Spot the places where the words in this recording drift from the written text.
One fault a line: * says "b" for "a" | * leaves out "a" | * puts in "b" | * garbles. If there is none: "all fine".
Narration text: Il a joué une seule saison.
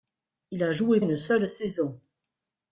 all fine